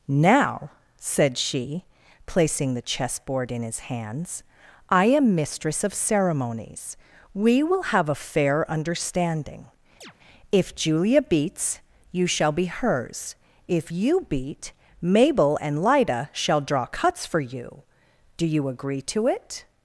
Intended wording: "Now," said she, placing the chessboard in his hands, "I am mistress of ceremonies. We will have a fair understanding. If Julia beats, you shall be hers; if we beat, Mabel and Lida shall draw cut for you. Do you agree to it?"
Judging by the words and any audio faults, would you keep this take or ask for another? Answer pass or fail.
fail